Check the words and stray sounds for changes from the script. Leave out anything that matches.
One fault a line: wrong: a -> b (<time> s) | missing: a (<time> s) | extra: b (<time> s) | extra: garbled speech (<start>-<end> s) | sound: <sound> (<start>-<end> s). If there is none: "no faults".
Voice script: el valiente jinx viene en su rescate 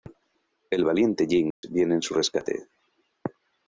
sound: dropout (1.5-1.6 s)